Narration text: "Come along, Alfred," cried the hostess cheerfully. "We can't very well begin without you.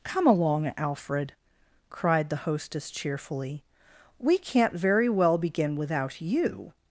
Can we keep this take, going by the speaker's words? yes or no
yes